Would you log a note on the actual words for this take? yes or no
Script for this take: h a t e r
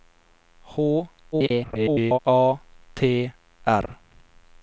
yes